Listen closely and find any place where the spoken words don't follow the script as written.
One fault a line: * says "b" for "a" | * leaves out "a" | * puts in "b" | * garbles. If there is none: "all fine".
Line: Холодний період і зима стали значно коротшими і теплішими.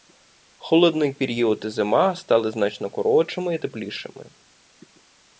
all fine